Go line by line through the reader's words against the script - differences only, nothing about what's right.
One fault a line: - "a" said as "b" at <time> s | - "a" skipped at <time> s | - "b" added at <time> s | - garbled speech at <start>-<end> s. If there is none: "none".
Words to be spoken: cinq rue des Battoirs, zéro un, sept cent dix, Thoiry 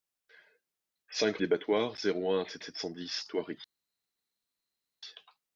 - "rue" skipped at 1.4 s
- "sept" added at 2.6 s